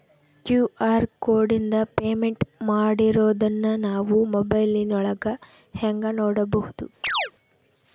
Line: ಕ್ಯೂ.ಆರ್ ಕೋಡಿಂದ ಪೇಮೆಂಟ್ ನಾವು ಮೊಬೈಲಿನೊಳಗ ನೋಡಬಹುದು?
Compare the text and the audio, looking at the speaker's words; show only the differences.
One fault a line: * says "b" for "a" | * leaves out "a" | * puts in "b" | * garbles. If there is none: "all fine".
* puts in "ಮಾಡಿರೋದನ್ನ"
* puts in "ಹೆಂಗ"